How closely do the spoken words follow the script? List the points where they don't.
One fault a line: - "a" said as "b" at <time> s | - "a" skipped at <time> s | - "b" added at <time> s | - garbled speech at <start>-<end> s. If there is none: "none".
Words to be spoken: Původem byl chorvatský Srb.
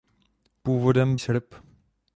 - "byl chorvatský" skipped at 1.2 s